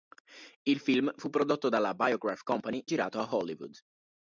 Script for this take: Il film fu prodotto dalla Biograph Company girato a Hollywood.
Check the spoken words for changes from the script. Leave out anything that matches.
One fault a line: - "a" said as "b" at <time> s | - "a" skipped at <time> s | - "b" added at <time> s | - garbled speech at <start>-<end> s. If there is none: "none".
none